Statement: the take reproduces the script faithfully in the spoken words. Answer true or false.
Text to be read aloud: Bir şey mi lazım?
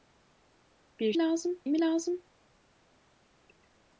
false